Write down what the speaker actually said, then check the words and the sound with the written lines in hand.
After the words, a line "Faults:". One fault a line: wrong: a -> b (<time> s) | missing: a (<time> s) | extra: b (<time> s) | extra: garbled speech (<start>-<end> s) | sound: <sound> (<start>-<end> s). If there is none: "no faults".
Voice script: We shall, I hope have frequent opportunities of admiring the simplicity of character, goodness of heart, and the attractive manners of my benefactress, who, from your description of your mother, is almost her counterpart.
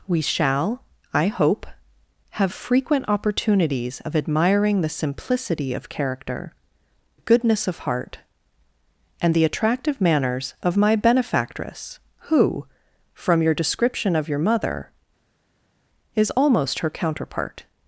We shall, I hope have frequent opportunities of admiring the simplicity of character, goodness of heart, and the attractive manners of my benefactress, who, from your description of your mother, is almost her counterpart.
Faults:
no faults